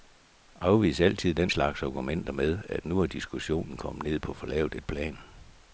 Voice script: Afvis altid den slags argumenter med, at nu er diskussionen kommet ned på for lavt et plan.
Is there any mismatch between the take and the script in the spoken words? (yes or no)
no